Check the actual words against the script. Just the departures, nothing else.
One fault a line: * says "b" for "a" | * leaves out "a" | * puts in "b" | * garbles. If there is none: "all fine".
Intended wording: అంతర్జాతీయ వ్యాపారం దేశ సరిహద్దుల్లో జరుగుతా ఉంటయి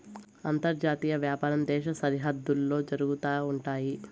all fine